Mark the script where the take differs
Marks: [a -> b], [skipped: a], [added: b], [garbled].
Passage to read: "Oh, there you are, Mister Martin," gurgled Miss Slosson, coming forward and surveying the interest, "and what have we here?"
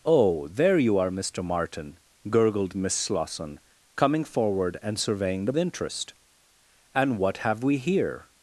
"Oh, there you are, Mister Martin," gurgled Miss Slosson, coming forward and surveying the interest, "and what have we here?"